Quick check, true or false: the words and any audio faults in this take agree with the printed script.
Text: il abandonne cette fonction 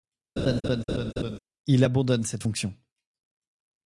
false